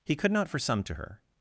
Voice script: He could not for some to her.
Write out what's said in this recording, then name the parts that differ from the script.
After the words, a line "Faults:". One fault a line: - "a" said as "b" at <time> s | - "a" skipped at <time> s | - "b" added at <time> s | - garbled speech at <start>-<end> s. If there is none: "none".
He could not for some to her.
Faults:
none